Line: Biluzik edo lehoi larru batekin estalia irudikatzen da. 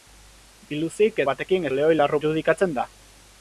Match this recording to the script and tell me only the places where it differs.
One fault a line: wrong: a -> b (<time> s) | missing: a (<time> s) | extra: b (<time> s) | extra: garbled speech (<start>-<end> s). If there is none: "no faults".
wrong: edo -> batekin (1.3 s)
missing: batekin estalia (2.2 s)